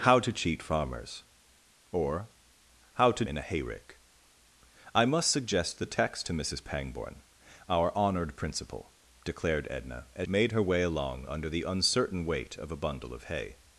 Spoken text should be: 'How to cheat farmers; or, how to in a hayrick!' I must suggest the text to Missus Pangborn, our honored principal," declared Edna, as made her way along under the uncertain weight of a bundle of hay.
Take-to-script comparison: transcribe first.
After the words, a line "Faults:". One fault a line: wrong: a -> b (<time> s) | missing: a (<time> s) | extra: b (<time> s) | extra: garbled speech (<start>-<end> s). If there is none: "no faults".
'How to cheat farmers; or, how to in a hayrick!' I must suggest the text to Missus Pangborn, our honored principal," declared Edna, as made her way along under the uncertain weight of a bundle of hay.
Faults:
no faults